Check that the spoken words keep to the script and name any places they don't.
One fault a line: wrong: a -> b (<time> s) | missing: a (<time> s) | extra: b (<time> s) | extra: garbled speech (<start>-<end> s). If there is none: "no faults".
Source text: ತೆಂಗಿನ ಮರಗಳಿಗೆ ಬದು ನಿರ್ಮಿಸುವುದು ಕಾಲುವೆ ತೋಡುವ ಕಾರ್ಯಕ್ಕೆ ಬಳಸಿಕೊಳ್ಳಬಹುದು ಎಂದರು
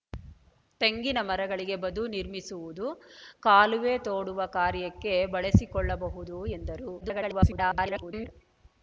extra: garbled speech (7.0-8.3 s)